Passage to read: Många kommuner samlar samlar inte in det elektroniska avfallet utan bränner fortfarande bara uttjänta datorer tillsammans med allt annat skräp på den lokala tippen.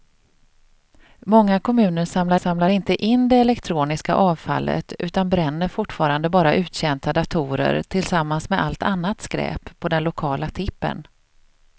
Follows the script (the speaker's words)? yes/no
yes